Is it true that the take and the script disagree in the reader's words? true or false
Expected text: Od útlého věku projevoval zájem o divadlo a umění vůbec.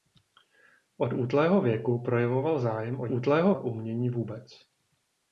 true